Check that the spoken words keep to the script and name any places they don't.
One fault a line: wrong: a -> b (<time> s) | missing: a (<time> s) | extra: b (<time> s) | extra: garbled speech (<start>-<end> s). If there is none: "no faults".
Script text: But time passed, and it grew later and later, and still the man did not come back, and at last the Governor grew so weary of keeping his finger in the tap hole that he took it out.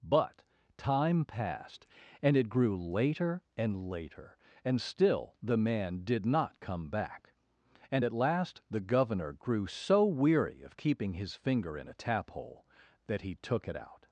wrong: the -> a (11.9 s)